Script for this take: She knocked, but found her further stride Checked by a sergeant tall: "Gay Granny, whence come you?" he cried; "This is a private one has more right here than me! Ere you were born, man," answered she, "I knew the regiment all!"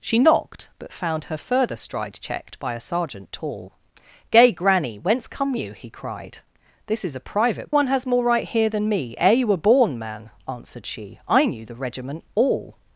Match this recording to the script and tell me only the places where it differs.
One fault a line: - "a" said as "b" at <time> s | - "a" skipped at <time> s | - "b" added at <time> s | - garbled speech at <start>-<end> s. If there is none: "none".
none